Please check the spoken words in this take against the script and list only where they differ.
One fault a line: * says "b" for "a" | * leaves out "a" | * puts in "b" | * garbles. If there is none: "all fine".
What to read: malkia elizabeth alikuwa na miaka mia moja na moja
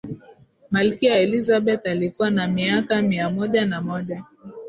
all fine